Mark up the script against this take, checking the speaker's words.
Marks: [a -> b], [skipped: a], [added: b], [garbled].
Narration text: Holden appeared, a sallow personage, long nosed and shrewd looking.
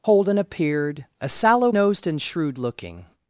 Holden appeared, a sallow [skipped: personage, long] nosed and shrewd looking.